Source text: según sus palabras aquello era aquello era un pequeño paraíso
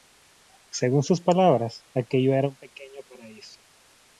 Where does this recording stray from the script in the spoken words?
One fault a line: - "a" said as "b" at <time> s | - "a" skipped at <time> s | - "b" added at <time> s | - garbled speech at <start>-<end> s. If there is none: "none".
- "aquello era" skipped at 2.5 s